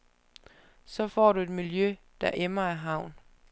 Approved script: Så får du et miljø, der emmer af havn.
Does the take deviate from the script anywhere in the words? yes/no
no